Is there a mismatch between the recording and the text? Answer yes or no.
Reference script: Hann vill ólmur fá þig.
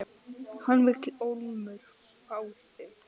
no